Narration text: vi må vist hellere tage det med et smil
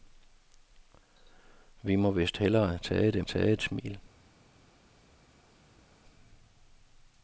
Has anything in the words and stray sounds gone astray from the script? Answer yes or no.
yes